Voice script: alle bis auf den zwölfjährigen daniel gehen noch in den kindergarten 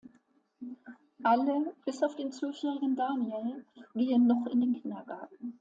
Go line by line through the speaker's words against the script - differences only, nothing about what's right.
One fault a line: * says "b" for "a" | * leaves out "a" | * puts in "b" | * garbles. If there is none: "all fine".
all fine